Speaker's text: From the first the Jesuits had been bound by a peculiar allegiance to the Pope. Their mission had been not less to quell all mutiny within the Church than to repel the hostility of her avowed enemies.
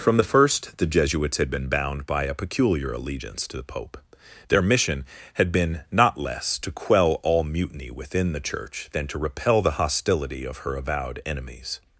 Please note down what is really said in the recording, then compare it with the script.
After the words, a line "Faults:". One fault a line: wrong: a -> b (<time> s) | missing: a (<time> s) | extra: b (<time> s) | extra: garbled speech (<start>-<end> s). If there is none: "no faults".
From the first the Jesuits had been bound by a peculiar allegiance to the Pope. Their mission had been not less to quell all mutiny within the Church than to repel the hostility of her avowed enemies.
Faults:
no faults